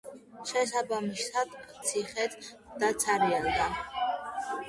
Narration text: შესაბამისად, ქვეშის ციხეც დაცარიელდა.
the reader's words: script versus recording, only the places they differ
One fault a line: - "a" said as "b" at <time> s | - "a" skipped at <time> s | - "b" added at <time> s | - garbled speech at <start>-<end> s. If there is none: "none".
- "ქვეშის" skipped at 1.5 s